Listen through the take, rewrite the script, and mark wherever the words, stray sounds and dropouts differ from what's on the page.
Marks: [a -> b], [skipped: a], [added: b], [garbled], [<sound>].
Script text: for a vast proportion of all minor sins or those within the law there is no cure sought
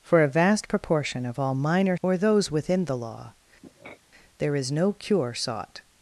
for a vast proportion of all minor [skipped: sins] or those within the law [sniff] there is no cure sought